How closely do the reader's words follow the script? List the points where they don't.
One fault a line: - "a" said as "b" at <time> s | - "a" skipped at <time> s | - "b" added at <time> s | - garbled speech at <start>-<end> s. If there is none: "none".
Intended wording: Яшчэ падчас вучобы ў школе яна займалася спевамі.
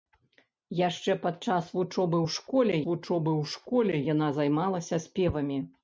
- "вучобы ў школе" added at 2.9 s